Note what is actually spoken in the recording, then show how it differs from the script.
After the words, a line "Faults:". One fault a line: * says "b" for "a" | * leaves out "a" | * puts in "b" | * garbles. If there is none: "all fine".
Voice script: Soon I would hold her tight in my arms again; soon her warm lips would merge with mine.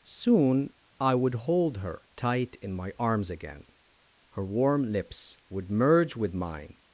Soon I would hold her tight in my arms again; her warm lips would merge with mine.
Faults:
* leaves out "soon"